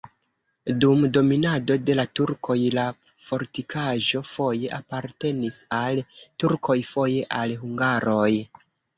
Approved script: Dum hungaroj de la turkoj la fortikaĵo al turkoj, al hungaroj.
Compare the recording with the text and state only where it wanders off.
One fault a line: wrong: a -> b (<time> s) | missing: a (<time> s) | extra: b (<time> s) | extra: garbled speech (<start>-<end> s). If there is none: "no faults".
wrong: hungaroj -> dominado (1.2 s)
extra: foje apartenis (4.3 s)
extra: foje (6.9 s)